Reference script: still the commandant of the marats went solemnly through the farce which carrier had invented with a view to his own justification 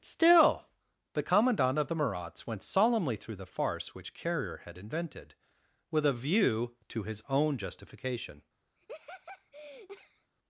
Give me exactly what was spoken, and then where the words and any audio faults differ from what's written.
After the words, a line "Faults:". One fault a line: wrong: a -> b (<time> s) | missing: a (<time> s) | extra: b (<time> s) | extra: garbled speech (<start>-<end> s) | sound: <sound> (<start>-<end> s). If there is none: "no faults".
still the commandant of the marats went solemnly through the farce which carrier had invented with a view to his own justification
Faults:
sound: laugh (8.8-10.3 s)